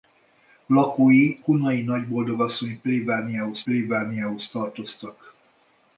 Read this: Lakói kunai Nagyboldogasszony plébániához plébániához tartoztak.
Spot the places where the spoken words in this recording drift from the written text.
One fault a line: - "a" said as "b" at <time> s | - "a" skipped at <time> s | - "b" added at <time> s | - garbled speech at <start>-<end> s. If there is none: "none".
none